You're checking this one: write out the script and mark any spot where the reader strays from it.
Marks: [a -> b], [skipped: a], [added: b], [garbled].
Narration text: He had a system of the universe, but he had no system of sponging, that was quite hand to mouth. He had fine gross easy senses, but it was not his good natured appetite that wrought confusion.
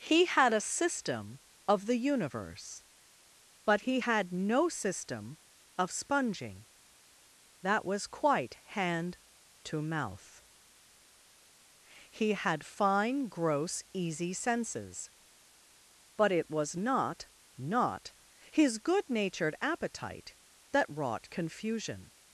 He had a system of the universe, but he had no system of sponging, that was quite hand to mouth. He had fine gross easy senses, but it was not [added: not] his good natured appetite that wrought confusion.